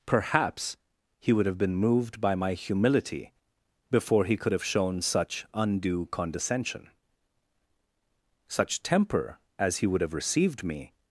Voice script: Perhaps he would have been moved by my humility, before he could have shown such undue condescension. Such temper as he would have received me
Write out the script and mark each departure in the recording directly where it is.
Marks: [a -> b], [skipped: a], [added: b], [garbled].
Perhaps he would have been moved by my humility, before he could have shown such undue condescension. Such temper as he would have received me